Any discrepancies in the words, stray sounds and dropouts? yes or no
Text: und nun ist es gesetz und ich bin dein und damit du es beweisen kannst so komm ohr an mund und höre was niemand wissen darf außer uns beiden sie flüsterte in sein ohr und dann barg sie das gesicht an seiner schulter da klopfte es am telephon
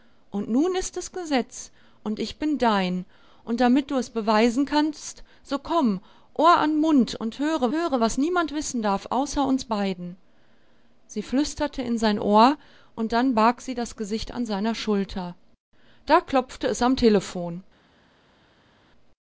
yes